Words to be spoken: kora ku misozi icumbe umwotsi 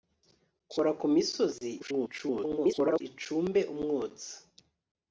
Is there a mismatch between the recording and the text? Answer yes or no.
yes